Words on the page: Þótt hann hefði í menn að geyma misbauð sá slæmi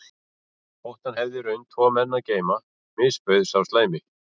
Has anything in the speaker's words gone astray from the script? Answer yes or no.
yes